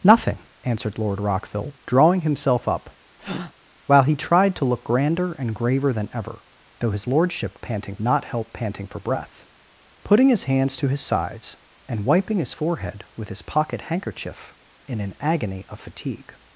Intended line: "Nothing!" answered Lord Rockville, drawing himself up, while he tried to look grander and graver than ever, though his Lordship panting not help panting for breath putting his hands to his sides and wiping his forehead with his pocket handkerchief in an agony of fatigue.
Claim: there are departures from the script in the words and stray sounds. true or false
true